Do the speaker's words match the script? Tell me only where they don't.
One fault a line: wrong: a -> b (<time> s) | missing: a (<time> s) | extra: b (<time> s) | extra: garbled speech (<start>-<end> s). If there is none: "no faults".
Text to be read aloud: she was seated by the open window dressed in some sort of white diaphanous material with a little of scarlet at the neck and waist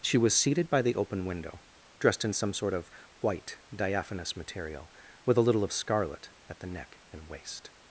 no faults